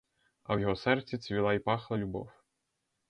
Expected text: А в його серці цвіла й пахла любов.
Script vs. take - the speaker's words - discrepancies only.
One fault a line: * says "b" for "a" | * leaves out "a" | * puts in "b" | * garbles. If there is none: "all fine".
all fine